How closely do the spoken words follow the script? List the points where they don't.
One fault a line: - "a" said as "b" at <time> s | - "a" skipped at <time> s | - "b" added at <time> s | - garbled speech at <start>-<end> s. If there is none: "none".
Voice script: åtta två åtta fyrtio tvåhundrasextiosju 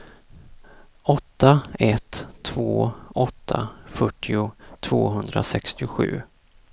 - "ett" added at 1.8 s